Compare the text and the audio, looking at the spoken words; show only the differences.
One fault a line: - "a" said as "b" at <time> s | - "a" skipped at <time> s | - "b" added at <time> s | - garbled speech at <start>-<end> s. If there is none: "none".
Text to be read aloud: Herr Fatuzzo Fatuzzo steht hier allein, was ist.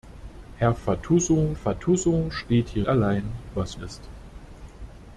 none